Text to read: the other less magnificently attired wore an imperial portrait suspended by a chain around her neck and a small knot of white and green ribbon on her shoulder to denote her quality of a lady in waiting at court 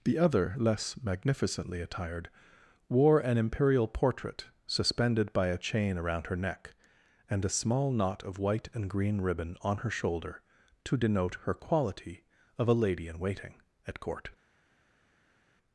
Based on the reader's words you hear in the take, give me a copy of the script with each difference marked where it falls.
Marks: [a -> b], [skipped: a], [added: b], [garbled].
the other less magnificently attired wore an imperial portrait suspended by a chain around her neck and a small knot of white and green ribbon on her shoulder to denote her quality of a lady in waiting at court